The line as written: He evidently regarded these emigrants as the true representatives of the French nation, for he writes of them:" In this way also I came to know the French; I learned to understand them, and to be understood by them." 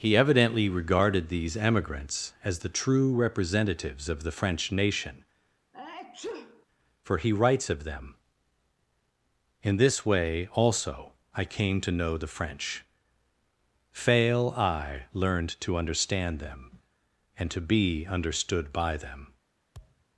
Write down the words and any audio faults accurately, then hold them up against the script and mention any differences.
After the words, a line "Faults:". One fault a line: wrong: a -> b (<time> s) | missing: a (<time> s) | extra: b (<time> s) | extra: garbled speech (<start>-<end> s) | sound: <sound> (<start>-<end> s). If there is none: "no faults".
He evidently regarded these emigrants as the true representatives of the French nation, for he writes of them:" In this way also I came to know the French; fail I learned to understand them, and to be understood by them."
Faults:
sound: sneeze (5.7-6.7 s)
extra: fail (13.9 s)
sound: thud (19.7-20.1 s)